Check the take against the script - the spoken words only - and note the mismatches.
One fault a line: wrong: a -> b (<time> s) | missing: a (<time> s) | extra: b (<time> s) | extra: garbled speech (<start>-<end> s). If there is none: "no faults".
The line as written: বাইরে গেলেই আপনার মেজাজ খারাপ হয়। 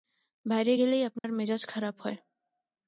no faults